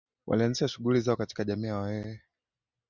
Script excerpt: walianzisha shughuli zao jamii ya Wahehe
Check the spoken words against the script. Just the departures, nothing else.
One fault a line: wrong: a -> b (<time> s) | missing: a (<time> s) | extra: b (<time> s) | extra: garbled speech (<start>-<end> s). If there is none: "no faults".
extra: katika (1.1 s)